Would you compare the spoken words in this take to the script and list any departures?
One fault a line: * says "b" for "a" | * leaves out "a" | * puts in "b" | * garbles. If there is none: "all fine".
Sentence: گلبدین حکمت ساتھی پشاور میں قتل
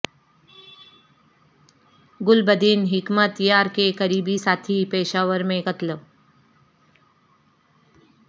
* puts in "یار کے قریبی"